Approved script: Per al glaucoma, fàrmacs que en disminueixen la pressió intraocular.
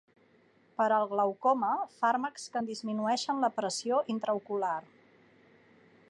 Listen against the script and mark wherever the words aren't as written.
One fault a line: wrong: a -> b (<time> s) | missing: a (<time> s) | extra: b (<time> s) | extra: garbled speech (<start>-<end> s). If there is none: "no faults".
no faults